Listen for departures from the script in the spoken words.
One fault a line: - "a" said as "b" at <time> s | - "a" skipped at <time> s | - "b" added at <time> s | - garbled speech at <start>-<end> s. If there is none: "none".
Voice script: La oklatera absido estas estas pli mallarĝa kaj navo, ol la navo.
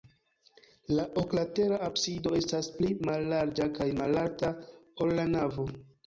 - "estas" skipped at 2.7 s
- "navo" said as "malalta" at 4.0 s